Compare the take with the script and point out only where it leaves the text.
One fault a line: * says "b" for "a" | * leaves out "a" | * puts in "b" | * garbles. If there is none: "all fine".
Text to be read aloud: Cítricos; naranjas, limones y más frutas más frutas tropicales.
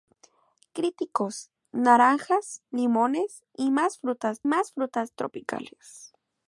all fine